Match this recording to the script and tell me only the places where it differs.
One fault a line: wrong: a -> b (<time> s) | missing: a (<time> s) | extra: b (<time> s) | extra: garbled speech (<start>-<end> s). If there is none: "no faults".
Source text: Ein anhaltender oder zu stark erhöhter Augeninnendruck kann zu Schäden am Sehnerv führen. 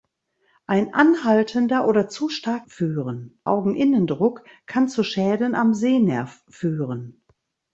wrong: erhöhter -> führen (2.7 s)